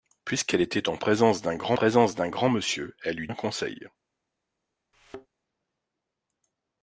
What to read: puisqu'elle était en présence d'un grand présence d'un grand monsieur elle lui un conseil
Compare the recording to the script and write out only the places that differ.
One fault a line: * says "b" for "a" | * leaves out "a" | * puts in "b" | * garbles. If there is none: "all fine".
all fine